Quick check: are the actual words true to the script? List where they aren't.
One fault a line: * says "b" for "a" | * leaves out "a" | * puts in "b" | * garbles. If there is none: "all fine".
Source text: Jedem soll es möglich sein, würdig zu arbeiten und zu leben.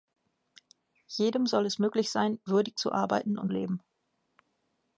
* leaves out "zu"